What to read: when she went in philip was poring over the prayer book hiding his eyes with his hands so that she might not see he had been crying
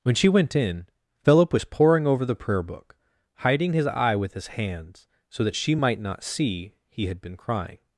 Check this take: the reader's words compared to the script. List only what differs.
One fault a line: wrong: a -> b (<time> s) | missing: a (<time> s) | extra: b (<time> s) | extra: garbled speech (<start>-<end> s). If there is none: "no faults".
wrong: eyes -> eye (3.9 s)